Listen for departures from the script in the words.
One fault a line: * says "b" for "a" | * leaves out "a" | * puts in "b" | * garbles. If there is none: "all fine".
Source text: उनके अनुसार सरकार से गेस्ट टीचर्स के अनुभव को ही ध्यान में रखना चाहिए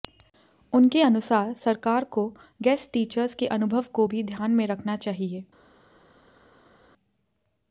* says "को" for "से"
* says "भी" for "ही"